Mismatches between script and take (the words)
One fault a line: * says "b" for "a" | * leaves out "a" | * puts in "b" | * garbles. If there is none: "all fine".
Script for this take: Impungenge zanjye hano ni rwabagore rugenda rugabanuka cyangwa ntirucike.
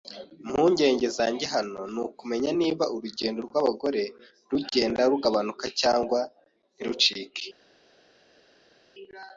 * puts in "ukumenya niba urugendo"